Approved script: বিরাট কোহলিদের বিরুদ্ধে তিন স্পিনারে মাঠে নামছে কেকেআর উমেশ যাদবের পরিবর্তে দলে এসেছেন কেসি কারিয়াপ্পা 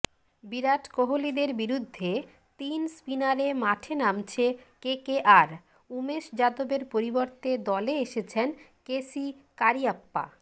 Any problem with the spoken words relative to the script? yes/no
no